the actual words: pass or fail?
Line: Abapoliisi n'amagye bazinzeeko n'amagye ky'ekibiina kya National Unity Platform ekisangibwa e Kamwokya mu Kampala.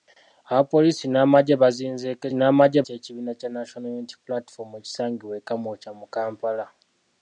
pass